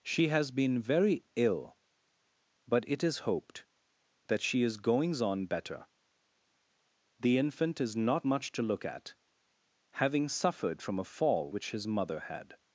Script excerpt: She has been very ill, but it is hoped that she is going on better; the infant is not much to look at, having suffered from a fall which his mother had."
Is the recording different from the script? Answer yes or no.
yes